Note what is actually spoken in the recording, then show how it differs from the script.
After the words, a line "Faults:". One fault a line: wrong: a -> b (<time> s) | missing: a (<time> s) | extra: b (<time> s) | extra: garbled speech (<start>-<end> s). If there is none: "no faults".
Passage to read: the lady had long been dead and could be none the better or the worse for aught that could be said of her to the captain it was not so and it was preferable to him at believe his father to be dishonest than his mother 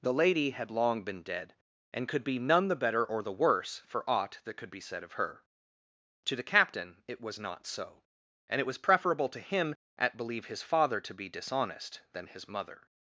the lady had long been dead and could be none the better or the worse for aught that could be said of her to the captain it was not so and it was preferable to him at believe his father to be dishonest than his mother
Faults:
no faults